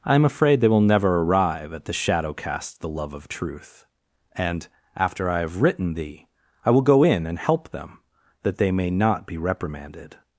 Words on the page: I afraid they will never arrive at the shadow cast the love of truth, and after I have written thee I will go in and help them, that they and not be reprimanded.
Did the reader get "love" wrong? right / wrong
right